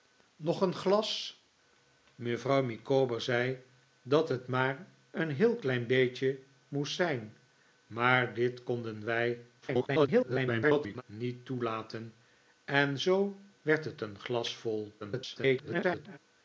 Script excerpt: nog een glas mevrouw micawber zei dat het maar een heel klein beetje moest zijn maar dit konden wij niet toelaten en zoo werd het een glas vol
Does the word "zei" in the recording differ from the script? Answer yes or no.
no